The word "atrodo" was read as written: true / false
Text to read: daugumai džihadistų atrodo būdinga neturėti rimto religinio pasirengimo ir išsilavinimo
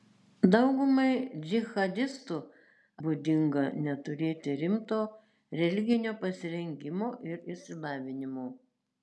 false